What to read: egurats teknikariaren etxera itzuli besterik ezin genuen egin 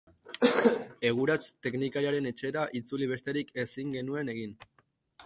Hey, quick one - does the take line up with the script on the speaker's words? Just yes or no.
yes